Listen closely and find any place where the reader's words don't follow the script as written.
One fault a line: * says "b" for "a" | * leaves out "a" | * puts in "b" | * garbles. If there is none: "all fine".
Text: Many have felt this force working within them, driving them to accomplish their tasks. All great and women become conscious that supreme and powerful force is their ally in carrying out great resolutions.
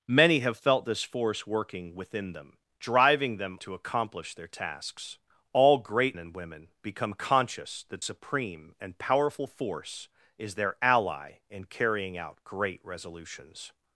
all fine